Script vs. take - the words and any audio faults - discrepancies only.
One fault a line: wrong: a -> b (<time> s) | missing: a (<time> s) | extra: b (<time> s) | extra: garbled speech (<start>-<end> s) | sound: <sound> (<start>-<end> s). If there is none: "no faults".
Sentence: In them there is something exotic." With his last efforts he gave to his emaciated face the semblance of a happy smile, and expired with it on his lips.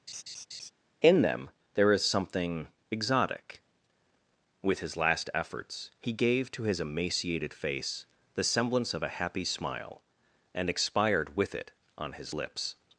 sound: laugh (0.1-0.7 s)